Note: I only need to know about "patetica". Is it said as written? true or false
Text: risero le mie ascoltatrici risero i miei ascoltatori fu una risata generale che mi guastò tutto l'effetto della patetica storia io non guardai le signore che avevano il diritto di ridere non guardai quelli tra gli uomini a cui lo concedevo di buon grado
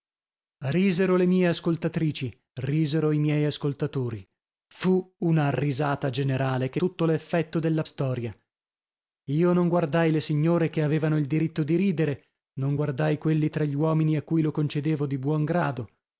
false